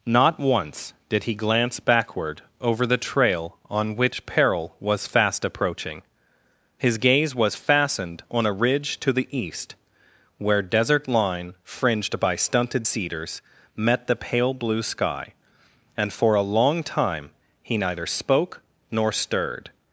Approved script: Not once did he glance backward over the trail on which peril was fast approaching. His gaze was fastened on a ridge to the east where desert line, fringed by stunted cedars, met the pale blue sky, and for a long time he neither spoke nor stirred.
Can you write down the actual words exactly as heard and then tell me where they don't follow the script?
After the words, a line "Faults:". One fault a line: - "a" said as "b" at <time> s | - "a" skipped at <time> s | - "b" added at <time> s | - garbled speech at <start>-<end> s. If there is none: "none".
Not once did he glance backward over the trail on which peril was fast approaching. His gaze was fastened on a ridge to the east where desert line, fringed by stunted cedars, met the pale blue sky, and for a long time he neither spoke nor stirred.
Faults:
none